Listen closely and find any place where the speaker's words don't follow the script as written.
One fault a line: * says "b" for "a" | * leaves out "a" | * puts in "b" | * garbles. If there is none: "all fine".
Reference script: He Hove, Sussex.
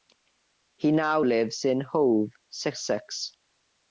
* puts in "now lives in"